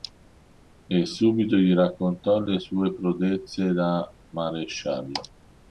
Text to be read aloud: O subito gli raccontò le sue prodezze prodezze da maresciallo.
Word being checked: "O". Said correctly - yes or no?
no